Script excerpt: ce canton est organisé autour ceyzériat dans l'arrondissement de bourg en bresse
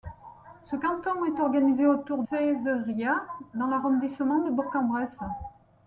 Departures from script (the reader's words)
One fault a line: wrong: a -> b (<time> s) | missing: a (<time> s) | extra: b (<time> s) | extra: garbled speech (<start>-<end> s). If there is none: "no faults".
no faults